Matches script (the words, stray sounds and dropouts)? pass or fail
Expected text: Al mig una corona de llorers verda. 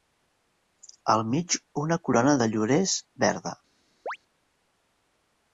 fail